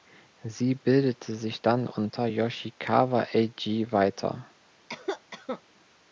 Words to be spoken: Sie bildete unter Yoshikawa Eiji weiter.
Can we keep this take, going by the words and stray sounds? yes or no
no